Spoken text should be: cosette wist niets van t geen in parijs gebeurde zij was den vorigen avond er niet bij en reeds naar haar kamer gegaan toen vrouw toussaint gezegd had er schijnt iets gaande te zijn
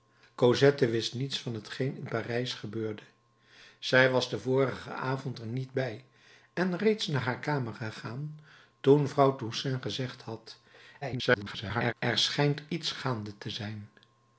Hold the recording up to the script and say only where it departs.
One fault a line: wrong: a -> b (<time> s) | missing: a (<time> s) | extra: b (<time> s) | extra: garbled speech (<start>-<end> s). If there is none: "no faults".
extra: garbled speech (11.0-11.9 s)